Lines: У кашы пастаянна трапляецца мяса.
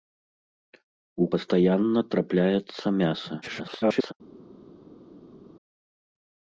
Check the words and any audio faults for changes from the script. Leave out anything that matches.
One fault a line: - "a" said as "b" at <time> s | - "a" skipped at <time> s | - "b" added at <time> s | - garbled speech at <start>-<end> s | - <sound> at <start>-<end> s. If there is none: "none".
- "кашы" skipped at 1.3 s
- garbled speech at 3.4-4.1 s